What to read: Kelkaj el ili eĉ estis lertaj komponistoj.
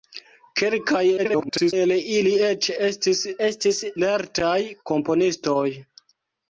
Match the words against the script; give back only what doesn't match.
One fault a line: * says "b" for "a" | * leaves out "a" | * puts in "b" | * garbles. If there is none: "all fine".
* garbles
* puts in "estis"